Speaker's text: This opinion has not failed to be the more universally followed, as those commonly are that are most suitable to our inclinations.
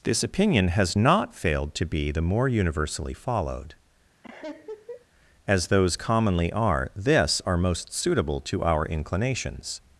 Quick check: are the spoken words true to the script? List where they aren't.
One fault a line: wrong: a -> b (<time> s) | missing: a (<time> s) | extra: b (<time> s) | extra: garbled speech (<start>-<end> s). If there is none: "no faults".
wrong: that -> this (6.9 s)